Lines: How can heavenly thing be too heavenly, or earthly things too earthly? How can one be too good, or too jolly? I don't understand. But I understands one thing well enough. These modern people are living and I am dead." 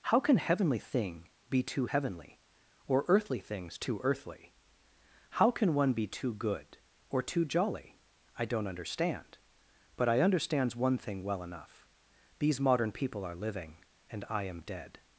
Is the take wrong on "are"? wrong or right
right